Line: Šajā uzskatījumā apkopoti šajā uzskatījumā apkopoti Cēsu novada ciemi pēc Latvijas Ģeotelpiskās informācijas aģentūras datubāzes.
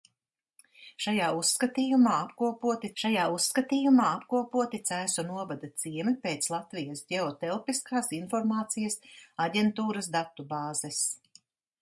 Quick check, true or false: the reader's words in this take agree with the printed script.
true